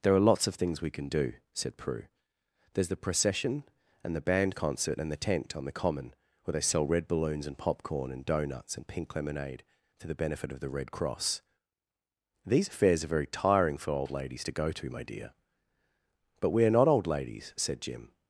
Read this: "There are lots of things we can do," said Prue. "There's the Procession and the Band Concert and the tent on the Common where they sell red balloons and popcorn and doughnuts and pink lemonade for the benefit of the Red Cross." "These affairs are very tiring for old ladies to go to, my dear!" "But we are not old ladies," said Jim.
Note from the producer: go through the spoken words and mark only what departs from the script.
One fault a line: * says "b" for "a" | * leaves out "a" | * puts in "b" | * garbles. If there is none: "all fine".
all fine